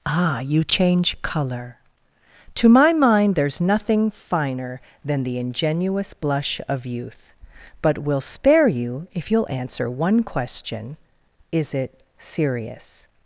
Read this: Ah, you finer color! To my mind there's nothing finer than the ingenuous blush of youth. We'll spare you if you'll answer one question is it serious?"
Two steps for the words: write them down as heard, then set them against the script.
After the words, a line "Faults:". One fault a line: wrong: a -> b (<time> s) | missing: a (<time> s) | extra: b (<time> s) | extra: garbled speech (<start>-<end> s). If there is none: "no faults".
Ah, you change color! To my mind there's nothing finer than the ingenuous blush of youth. But we'll spare you if you'll answer one question is it serious?"
Faults:
wrong: finer -> change (0.6 s)
extra: But (7.8 s)